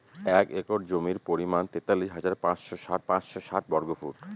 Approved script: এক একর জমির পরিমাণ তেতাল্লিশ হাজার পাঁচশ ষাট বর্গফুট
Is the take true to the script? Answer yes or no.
no